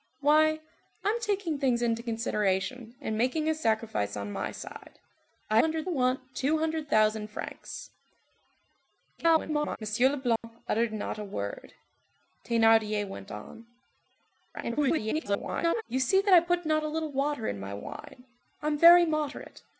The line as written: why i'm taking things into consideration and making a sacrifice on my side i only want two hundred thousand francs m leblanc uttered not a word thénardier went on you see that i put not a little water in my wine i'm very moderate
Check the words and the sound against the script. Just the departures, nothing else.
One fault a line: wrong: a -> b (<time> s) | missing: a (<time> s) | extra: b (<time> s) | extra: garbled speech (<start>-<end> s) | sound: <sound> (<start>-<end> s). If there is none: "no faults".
wrong: only -> hundred (5.6 s)
extra: garbled speech (9.2-9.8 s)
sound: dropout (10.4-10.4 s)
extra: garbled speech (14.5-15.8 s)